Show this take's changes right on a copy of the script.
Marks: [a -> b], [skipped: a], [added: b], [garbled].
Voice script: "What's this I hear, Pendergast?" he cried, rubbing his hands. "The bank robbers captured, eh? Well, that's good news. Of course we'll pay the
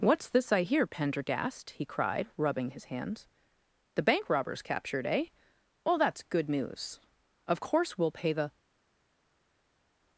"What's this I hear, Pendergast?" he cried, rubbing his hands. "The bank robbers captured, eh? Well, that's good news. Of course we'll pay the